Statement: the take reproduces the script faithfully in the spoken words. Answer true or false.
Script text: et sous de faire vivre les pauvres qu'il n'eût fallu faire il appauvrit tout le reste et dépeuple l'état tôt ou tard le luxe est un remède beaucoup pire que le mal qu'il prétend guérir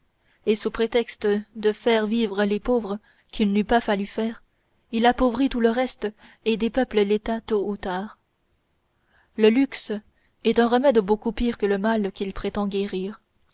false